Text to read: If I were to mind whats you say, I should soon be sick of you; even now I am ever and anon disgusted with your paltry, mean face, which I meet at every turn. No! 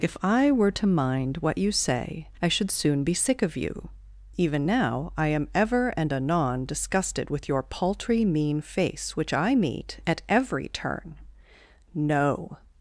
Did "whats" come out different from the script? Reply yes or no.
yes